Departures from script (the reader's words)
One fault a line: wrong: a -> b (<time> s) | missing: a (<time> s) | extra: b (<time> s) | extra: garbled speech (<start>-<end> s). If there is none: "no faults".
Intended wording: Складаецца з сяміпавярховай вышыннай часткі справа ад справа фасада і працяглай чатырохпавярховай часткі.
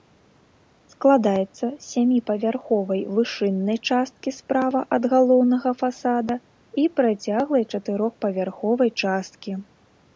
wrong: справа -> галоўнага (5.2 s)